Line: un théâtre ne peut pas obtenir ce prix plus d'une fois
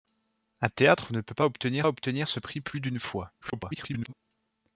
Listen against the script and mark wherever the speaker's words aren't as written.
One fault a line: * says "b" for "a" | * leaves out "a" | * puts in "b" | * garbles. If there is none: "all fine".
* puts in "obtenir"
* garbles